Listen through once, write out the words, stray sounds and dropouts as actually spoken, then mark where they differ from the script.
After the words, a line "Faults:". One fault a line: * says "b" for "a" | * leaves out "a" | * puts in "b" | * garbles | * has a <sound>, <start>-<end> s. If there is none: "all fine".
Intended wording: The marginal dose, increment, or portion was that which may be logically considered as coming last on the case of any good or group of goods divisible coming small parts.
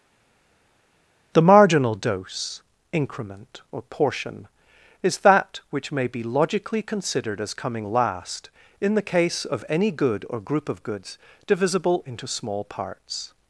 The marginal dose, increment, or portion is that which may be logically considered as coming last in the case of any good or group of goods divisible into small parts.
Faults:
* says "is" for "was"
* says "in" for "on"
* says "into" for "coming"